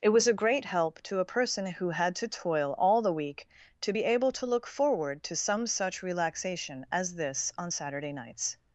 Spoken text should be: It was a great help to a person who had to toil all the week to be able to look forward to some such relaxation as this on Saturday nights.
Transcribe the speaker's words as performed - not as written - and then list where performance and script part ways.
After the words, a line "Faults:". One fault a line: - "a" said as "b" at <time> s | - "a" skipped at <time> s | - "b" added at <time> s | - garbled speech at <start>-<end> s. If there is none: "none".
It was a great help to a person who had to toil all the week to be able to look forward to some such relaxation as this on Saturday nights.
Faults:
none